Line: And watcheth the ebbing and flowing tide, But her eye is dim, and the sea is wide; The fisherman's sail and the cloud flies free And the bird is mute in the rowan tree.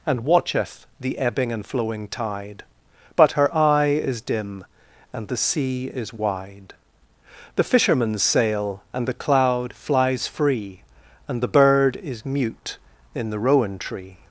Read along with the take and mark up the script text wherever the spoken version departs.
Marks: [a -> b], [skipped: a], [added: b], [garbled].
And watcheth the ebbing and flowing tide, But her eye is dim, and the sea is wide; The fisherman's sail and the cloud flies free And the bird is mute in the rowan tree.